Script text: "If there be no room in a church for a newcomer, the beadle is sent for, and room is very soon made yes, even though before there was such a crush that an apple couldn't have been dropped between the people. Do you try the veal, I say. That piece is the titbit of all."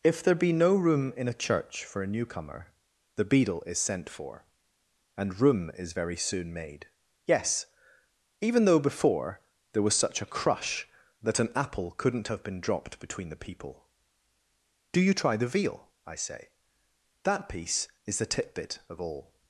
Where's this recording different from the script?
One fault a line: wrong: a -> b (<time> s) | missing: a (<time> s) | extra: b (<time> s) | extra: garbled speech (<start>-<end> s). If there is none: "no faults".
no faults